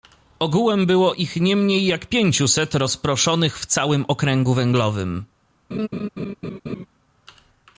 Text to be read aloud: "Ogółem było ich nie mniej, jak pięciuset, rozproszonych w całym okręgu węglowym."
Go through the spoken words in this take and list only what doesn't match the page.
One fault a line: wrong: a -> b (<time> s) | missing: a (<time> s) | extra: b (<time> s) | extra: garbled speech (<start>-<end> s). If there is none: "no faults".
no faults